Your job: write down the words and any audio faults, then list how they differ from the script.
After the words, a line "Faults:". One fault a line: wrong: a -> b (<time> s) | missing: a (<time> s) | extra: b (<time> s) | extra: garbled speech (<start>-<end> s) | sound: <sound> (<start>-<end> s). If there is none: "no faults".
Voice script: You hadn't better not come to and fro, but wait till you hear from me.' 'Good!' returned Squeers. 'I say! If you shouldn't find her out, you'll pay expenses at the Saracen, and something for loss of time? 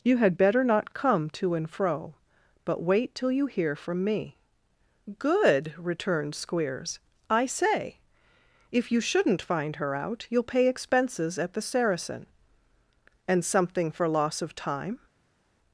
You had better not come to and fro, but wait till you hear from me.' 'Good!' returned Squeers. 'I say! If you shouldn't find her out, you'll pay expenses at the Saracen, and something for loss of time?
Faults:
wrong: hadn't -> had (0.2 s)